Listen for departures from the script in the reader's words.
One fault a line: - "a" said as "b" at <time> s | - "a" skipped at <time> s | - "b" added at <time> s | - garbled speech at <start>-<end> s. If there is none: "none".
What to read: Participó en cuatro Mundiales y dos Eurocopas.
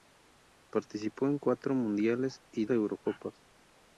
- "dos" skipped at 2.6 s